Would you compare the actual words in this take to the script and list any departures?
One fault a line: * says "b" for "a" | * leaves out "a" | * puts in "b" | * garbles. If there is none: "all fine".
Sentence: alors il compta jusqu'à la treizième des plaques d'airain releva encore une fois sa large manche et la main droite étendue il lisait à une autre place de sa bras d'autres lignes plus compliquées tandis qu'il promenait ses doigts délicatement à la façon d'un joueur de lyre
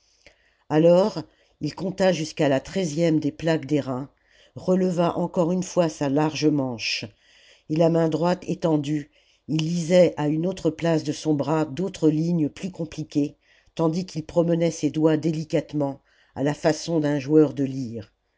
* says "son" for "sa"